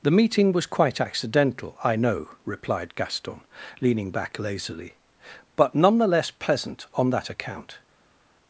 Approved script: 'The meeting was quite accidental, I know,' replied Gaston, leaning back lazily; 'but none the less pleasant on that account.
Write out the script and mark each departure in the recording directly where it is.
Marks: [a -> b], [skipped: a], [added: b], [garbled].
'The meeting was quite accidental, I know,' replied Gaston, leaning back lazily; 'but none the less pleasant on that account.